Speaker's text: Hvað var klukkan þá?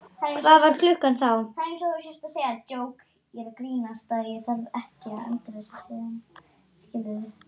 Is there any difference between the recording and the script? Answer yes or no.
no